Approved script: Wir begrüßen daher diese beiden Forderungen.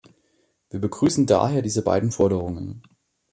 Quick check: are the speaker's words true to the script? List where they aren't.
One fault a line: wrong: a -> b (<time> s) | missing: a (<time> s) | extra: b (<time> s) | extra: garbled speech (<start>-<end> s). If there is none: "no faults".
no faults